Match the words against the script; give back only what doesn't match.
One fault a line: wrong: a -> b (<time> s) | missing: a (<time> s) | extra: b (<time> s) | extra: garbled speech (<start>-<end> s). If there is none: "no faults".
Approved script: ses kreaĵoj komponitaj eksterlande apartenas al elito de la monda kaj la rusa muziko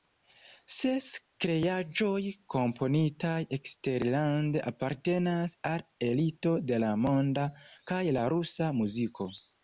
no faults